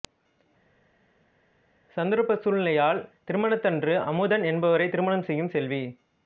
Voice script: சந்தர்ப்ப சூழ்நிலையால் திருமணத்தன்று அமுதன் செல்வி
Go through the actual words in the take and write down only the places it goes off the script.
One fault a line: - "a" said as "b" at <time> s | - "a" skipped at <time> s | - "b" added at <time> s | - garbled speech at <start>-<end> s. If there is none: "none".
- "என்பவரை திருமணம் செய்யும்" added at 4.5 s